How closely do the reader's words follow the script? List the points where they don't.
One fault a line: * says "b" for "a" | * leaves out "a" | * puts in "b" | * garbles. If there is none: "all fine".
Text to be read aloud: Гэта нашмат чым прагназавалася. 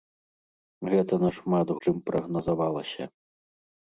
all fine